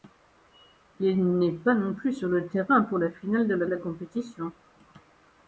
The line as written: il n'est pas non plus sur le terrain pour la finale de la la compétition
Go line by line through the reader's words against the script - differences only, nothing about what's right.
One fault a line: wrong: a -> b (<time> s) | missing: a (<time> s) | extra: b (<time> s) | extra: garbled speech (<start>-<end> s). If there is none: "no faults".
no faults